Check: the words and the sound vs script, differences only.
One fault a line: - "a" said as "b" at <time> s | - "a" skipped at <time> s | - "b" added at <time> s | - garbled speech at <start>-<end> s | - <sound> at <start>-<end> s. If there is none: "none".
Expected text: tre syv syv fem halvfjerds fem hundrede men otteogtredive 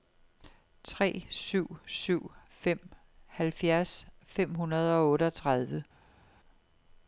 - "men" said as "og" at 5.0 s